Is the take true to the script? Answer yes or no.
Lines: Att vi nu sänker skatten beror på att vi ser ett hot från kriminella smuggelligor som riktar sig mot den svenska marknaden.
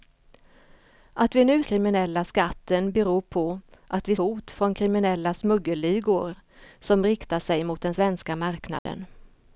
no